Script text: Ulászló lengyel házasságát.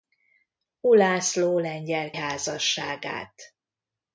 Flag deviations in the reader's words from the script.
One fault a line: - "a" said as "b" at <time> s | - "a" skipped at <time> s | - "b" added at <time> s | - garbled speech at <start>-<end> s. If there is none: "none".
none